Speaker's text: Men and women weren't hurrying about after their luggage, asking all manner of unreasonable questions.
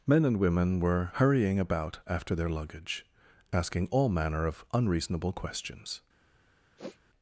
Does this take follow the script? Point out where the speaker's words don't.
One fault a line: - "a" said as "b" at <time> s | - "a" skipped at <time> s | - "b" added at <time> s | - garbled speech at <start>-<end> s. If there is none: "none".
- "weren't" said as "were" at 0.8 s